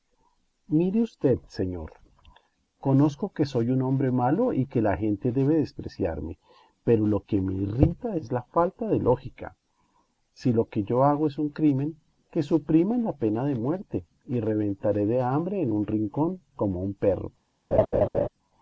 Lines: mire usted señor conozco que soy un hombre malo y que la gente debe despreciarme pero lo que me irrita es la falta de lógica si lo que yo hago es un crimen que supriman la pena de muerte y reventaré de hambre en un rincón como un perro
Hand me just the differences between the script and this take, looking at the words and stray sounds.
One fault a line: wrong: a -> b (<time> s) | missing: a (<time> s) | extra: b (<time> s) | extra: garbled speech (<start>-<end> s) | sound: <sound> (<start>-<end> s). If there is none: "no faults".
sound: laugh (17.7-18.3 s)